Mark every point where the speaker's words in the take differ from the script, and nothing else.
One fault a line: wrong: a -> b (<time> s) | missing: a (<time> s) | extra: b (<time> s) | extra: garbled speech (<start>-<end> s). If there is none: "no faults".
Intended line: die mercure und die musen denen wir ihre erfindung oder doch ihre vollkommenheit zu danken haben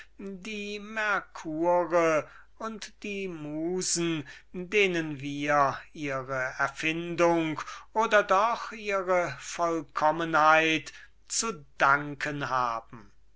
no faults